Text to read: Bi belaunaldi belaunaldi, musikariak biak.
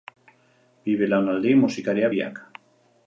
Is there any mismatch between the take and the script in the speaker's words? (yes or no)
yes